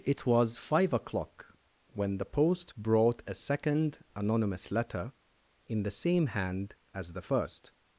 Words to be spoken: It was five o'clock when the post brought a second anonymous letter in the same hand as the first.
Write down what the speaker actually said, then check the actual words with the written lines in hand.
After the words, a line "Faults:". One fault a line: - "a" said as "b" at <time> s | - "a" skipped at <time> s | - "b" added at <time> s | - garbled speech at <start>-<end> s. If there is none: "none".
It was five o'clock when the post brought a second anonymous letter in the same hand as the first.
Faults:
none